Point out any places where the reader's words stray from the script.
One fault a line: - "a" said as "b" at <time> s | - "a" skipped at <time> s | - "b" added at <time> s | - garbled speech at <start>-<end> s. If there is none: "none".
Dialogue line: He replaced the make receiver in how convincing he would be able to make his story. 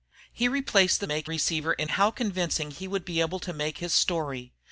none